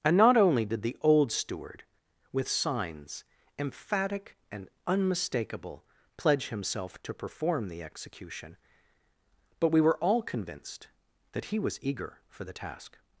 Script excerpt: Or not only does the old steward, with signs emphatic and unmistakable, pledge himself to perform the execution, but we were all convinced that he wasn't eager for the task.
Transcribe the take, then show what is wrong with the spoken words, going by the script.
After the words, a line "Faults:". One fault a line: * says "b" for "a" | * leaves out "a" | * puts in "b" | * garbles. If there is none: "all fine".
And not only did the old steward, with signs emphatic and unmistakable, pledge himself to perform the execution, but we were all convinced that he was eager for the task.
Faults:
* says "And" for "Or"
* says "did" for "does"
* says "was" for "wasn't"